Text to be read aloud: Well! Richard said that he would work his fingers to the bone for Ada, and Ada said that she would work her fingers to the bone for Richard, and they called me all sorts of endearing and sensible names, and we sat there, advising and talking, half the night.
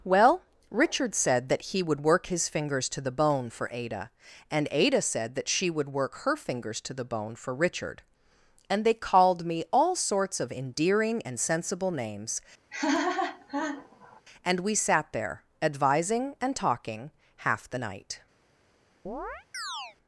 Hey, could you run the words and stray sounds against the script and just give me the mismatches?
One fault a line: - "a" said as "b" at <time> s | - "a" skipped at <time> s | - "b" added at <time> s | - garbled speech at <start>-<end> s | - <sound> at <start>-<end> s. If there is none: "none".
- laugh at 12.7-14.2 s
- chirp at 19.1-20.0 s